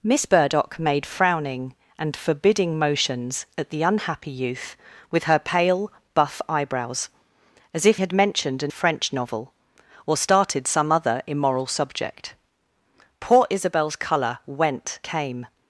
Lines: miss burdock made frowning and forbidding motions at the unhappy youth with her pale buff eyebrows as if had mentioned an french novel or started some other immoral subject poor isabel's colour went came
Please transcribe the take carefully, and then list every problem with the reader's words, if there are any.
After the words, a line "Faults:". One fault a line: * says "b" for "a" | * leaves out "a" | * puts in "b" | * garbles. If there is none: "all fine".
miss burdock made frowning and forbidding motions at the unhappy youth with her pale buff eyebrows as if had mentioned an french novel or started some other immoral subject poor isabel's colour went came
Faults:
all fine